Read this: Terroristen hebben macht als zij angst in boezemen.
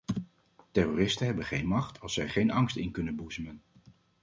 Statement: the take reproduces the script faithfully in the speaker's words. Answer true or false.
false